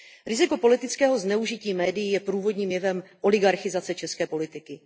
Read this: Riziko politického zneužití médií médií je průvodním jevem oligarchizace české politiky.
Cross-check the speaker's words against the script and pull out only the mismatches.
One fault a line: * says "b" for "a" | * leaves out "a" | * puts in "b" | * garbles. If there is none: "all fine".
* leaves out "médií"